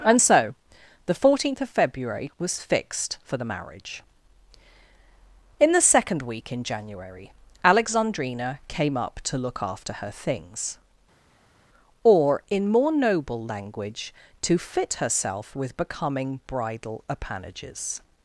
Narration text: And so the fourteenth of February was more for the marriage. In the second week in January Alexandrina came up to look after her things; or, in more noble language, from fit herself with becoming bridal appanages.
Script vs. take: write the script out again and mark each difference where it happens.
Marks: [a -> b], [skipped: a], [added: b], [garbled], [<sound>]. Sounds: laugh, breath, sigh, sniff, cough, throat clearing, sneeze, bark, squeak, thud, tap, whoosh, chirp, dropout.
And so the fourteenth of February was [more -> fixed] for the marriage. In the second week in January Alexandrina came up to look after her things; or, in more noble language, [from -> to] fit herself with becoming bridal appanages.